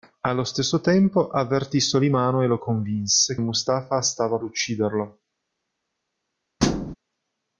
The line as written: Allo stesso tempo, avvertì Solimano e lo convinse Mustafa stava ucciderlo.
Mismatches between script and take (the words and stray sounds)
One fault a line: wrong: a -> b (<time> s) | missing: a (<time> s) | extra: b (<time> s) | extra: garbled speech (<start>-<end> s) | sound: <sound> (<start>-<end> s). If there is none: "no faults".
sound: thud (6.6-6.9 s)